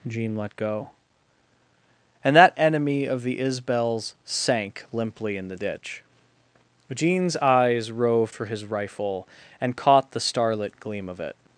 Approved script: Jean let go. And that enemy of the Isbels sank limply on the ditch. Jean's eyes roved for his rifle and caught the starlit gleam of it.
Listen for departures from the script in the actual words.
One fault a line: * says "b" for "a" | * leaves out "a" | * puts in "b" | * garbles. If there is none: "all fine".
* says "in" for "on"